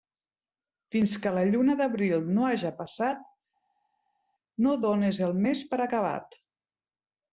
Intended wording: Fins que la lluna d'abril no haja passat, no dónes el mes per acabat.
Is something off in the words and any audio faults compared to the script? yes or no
no